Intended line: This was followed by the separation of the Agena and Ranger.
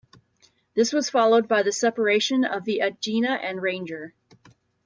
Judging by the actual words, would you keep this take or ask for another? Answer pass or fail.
pass